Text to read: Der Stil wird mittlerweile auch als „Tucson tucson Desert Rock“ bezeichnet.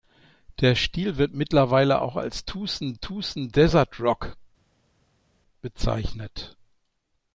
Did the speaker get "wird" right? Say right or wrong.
right